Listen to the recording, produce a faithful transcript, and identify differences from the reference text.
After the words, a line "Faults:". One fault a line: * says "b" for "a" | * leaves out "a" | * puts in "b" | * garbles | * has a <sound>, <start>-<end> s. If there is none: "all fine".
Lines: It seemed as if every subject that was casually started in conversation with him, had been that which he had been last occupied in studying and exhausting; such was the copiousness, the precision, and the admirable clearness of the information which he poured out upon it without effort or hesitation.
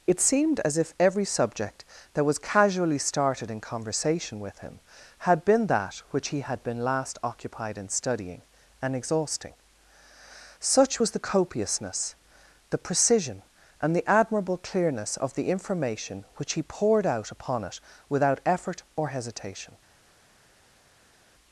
It seemed as if every subject that was casually started in conversation with him, had been that which he had been last occupied in studying and exhausting; such was the copiousness, the precision, and the admirable clearness of the information which he poured out upon it without effort or hesitation.
Faults:
all fine